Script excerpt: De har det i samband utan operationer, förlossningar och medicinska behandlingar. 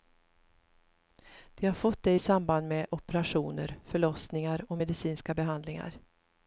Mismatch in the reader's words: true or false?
true